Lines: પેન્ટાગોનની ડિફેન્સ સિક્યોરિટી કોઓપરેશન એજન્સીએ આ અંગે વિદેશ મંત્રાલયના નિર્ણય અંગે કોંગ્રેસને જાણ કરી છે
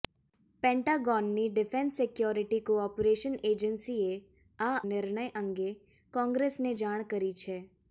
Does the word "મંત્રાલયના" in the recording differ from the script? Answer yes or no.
yes